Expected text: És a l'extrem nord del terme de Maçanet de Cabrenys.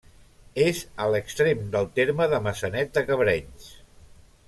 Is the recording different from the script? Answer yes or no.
yes